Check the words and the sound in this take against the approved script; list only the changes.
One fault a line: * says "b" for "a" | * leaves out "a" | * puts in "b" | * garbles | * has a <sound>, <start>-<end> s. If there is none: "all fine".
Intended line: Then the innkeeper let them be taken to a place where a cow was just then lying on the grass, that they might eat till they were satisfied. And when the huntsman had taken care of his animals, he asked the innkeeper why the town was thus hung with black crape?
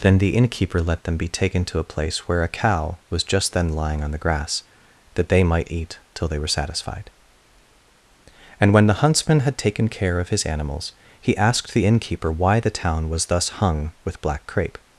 all fine